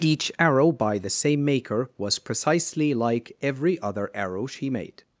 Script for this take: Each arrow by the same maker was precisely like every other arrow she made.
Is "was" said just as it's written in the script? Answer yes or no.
yes